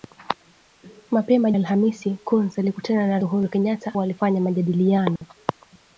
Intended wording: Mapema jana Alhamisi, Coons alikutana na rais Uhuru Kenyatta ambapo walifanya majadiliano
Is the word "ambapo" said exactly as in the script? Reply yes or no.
no